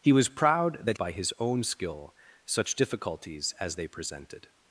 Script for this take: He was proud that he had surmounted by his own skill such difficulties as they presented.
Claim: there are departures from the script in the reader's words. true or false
true